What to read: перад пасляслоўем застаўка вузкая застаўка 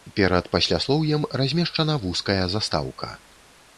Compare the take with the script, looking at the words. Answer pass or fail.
fail